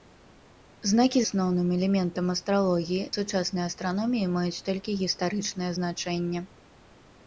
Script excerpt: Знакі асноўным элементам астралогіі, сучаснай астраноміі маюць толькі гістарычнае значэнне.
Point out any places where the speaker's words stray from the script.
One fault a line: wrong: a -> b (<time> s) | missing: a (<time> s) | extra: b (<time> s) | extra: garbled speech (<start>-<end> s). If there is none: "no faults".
no faults